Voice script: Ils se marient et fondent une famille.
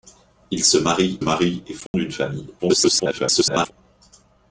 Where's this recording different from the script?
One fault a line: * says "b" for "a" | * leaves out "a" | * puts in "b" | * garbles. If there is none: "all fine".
* puts in "marient"
* garbles